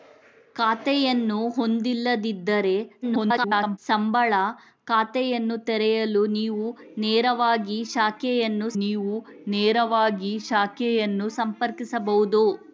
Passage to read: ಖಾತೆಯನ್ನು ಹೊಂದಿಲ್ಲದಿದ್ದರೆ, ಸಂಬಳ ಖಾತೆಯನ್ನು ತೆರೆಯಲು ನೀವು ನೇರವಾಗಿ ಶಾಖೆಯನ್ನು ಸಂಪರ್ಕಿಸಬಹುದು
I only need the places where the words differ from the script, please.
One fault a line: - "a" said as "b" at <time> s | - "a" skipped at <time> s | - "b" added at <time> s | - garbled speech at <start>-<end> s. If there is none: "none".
- garbled speech at 3.0-3.8 s
- "ನೀವು ನೇರವಾಗಿ ಶಾಖೆಯನ್ನು" added at 8.8 s